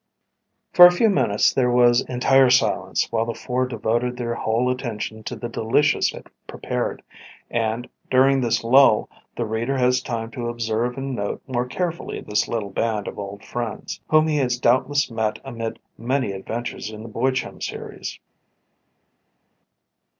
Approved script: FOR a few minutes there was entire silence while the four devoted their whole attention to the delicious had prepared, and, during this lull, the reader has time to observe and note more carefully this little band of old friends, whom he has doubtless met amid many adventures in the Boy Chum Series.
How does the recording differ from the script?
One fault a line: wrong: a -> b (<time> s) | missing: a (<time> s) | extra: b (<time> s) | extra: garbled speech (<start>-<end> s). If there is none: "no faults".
no faults